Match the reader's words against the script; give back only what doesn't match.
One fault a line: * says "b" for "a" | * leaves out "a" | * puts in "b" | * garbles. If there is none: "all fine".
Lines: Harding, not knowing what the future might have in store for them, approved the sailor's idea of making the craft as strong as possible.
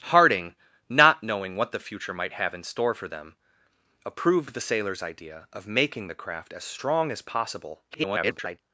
* garbles